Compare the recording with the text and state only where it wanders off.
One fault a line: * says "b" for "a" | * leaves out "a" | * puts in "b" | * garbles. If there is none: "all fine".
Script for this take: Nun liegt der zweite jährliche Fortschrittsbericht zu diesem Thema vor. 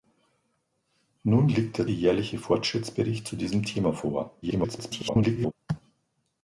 * leaves out "zweite"
* garbles